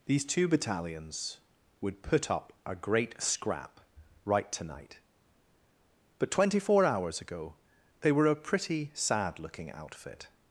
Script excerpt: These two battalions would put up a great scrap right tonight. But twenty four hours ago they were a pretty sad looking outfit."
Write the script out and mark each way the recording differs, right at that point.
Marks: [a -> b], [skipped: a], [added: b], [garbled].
These two battalions would put up a great scrap right tonight. But twenty four hours ago they were a pretty sad looking outfit."